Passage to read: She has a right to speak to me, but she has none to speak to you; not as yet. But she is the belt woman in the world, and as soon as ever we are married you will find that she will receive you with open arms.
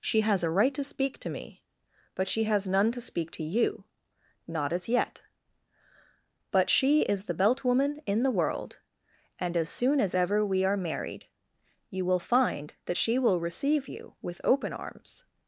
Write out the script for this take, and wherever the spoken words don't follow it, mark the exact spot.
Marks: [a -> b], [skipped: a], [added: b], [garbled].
She has a right to speak to me, but she has none to speak to you; not as yet. But she is the belt woman in the world, and as soon as ever we are married you will find that she will receive you with open arms.